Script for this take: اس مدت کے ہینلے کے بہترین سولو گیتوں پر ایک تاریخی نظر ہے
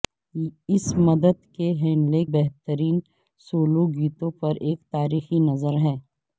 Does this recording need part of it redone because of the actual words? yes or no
yes